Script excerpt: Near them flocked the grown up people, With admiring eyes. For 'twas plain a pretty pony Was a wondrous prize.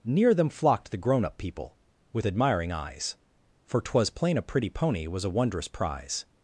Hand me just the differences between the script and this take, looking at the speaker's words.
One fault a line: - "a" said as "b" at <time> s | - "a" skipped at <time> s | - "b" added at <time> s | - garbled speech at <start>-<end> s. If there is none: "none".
none